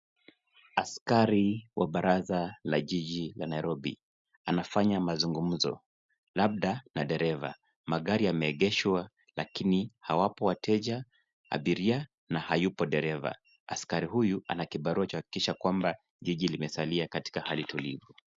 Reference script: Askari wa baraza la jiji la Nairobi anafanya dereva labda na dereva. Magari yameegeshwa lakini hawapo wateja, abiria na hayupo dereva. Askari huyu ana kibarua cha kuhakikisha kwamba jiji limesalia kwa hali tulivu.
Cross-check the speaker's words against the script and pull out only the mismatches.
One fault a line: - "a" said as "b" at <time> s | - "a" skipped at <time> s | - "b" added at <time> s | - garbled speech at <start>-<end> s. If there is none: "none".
- "dereva" said as "mazungumzo" at 5.0 s
- "kwa" said as "katika" at 17.1 s